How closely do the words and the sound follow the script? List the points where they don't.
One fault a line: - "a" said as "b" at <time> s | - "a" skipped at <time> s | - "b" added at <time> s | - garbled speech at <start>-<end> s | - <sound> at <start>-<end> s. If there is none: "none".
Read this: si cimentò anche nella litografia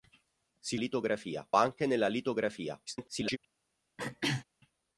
- "cimentò" said as "litografia" at 0.7 s
- garbled speech at 2.9-3.4 s
- throat clearing at 4.0-4.4 s